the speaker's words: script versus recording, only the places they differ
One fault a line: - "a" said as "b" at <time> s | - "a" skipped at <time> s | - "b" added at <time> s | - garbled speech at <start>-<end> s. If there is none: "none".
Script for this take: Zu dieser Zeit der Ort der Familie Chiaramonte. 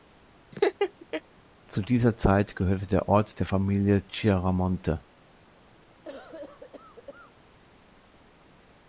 - "gehörte" added at 2.6 s